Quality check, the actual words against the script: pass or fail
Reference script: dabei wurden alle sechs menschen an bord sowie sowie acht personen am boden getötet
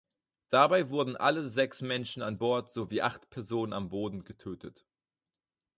fail